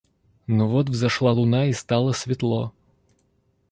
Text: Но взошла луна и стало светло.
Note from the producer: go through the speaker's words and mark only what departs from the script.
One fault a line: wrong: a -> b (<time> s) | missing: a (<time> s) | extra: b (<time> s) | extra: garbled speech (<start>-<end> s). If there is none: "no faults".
extra: вот (0.7 s)